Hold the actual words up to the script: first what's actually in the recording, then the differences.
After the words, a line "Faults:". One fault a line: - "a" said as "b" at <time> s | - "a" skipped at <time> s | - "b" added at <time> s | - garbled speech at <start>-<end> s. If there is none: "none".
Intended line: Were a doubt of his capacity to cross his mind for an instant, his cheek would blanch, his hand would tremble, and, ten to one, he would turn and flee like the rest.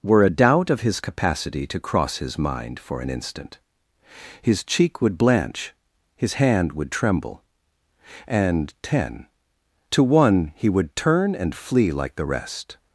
Were a doubt of his capacity to cross his mind for an instant, his cheek would blanch, his hand would tremble, and, ten to one, he would turn and flee like the rest.
Faults:
none